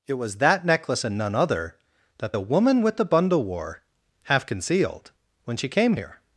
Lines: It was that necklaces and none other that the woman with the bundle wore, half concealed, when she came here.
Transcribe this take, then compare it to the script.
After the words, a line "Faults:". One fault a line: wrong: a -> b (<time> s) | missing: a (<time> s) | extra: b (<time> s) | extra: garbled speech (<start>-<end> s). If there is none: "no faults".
It was that necklace and none other that the woman with the bundle wore, half concealed, when she came here.
Faults:
wrong: necklaces -> necklace (0.7 s)